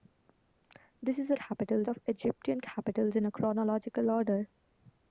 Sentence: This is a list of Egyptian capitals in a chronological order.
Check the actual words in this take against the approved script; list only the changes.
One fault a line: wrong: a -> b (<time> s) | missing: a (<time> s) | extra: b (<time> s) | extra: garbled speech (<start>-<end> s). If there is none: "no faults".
wrong: list -> capitals (1.3 s)